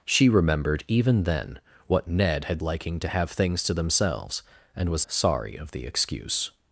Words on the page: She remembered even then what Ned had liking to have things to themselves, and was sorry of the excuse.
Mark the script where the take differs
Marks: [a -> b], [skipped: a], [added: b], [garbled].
She remembered even then what Ned had liking to have things to themselves, and was sorry of the excuse.